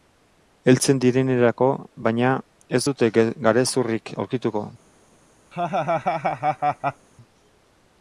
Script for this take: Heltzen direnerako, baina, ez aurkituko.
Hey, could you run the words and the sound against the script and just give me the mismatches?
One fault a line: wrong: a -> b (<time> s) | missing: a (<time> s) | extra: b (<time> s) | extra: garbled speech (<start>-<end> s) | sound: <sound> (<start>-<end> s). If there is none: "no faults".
extra: dute garezurrik (2.9 s)
sound: laugh (5.5-7.1 s)